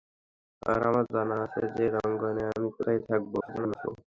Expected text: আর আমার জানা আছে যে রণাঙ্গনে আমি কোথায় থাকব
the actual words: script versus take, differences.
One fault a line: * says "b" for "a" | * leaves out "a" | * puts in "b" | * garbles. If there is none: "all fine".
* garbles